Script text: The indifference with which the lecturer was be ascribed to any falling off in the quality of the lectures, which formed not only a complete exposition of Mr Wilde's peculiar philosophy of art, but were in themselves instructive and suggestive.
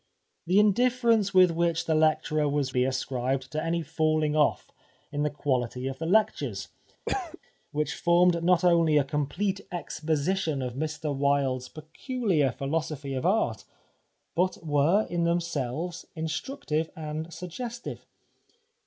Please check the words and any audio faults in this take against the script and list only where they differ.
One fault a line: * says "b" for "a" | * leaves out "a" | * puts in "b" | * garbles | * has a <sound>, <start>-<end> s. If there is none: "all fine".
* has a cough, 7.1-7.4 s